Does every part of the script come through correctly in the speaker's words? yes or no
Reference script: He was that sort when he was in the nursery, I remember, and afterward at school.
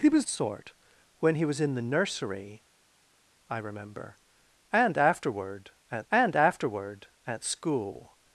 no